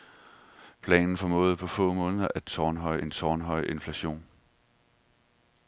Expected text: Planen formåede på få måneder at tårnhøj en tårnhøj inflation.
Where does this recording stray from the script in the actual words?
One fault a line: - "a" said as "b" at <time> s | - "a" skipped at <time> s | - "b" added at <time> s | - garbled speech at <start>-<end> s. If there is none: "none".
none